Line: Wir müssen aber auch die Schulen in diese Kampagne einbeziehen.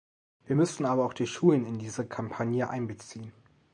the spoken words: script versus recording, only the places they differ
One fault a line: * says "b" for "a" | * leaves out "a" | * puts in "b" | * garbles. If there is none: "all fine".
all fine